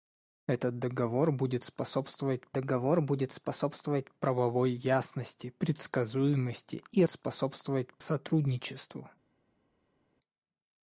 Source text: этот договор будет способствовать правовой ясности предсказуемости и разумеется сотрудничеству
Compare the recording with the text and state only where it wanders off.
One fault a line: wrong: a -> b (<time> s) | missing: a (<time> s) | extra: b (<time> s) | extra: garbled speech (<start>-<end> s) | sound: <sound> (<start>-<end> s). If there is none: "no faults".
extra: договор будет способствовать (2.5 s)
wrong: разумеется -> способствовать (7.1 s)